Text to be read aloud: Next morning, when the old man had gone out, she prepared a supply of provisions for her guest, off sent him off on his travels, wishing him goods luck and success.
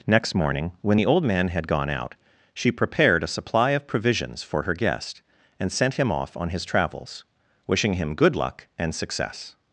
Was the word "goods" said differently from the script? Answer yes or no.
yes